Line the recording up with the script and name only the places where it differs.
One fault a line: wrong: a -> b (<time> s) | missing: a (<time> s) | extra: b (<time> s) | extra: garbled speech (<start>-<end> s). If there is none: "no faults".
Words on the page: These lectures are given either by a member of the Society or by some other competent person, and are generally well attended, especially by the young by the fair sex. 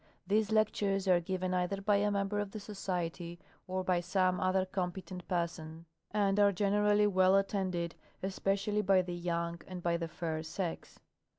extra: and (9.7 s)